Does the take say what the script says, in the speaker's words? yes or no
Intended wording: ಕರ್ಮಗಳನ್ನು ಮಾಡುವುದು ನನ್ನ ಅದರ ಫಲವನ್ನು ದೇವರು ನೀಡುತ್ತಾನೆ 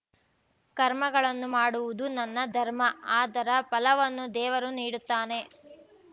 no